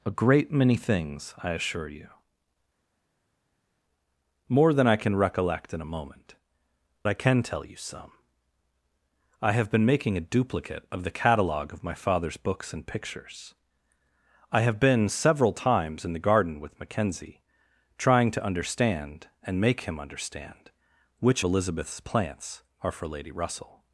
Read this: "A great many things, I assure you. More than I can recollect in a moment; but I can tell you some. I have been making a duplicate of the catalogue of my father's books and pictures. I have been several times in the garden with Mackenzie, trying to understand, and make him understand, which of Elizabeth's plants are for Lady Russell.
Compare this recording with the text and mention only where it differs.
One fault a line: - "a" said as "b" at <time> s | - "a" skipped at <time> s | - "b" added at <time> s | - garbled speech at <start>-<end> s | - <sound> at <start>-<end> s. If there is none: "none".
- "but" skipped at 6.3 s
- "of" skipped at 21.4 s